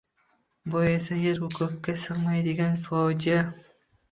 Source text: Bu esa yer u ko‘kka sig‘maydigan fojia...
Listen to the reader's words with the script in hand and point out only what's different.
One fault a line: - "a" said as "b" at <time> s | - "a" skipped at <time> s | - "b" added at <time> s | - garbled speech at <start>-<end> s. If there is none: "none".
none